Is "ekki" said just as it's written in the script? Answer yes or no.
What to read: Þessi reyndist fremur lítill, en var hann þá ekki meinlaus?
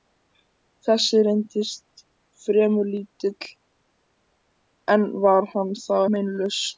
no